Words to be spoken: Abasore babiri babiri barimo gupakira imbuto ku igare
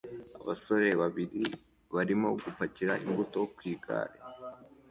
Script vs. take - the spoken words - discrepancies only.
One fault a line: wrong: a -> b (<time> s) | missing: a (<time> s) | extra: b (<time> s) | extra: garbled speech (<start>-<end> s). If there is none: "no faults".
missing: babiri (1.4 s)